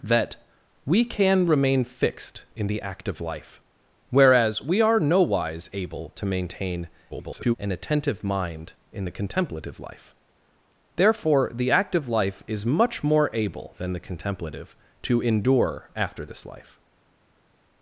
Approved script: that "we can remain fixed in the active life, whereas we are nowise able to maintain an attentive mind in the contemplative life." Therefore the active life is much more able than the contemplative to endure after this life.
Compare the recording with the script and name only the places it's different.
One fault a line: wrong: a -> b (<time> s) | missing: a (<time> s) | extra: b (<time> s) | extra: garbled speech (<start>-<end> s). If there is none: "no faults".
extra: garbled speech (7.1-7.6 s)